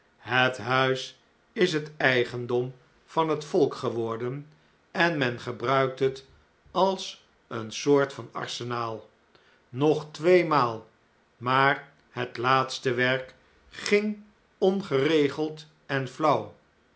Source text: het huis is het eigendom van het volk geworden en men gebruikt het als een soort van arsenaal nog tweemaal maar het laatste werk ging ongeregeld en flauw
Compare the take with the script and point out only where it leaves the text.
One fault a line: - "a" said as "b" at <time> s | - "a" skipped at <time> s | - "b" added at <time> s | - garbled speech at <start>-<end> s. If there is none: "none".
none